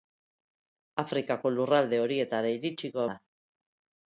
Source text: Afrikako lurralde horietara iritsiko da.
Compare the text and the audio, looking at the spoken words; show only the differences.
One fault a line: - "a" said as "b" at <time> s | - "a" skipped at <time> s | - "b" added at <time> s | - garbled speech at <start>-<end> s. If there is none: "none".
none